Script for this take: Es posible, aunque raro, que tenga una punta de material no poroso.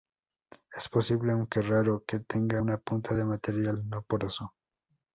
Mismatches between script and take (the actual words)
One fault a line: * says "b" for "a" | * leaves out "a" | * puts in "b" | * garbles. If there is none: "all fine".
all fine